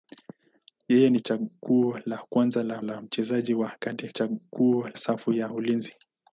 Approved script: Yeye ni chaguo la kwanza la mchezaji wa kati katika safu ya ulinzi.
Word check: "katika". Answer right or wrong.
wrong